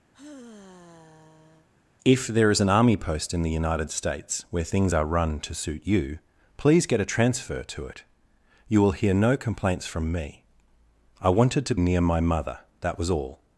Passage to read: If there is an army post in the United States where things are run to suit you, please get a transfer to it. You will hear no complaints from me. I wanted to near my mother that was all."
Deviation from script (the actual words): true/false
false